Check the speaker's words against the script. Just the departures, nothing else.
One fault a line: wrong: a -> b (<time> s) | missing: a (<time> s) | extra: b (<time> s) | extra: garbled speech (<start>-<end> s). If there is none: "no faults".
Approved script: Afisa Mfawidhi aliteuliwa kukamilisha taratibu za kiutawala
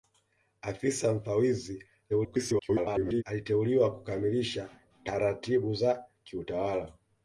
extra: garbled speech (2.1-3.2 s)